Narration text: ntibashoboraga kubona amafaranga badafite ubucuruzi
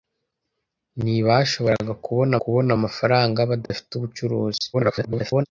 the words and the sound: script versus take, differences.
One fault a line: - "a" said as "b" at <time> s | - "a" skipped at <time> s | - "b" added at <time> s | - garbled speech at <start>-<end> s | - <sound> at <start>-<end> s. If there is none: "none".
- "kubona" added at 2.4 s
- dropout at 3.7-3.7 s
- garbled speech at 4.7-5.5 s